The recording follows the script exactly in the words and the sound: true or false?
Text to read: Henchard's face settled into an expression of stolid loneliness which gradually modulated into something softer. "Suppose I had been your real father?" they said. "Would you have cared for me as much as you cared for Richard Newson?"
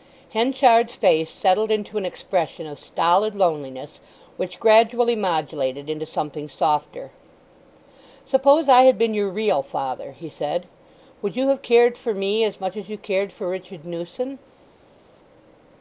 false